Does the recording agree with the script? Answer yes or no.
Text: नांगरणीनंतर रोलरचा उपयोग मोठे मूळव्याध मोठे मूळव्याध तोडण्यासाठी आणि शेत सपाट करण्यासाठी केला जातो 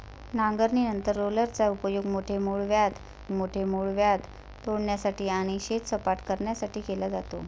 yes